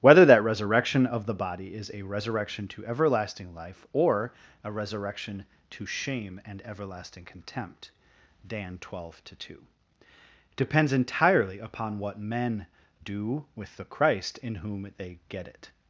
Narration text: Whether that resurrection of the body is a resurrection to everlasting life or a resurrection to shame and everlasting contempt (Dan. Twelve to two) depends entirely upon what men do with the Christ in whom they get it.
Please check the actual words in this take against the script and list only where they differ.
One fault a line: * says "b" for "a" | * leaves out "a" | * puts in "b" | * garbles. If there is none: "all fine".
all fine